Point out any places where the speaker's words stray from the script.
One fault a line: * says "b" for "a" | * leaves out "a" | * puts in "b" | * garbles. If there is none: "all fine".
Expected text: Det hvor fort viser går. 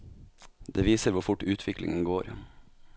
* puts in "viser"
* says "utviklingen" for "viser"